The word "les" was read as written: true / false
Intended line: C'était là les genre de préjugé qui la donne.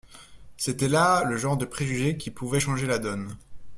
false